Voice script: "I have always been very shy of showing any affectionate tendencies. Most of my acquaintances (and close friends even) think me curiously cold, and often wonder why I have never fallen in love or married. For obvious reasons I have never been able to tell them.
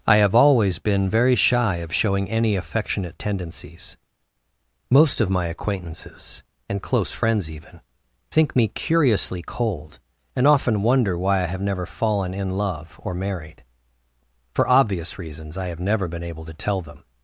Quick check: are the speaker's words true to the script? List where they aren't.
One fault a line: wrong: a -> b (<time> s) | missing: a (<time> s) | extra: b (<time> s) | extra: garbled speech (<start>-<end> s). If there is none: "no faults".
no faults